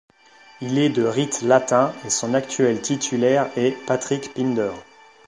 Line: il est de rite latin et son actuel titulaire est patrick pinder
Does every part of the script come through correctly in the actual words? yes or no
yes